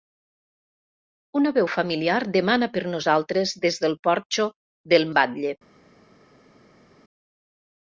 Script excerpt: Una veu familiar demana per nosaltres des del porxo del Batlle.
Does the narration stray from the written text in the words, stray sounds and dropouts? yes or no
no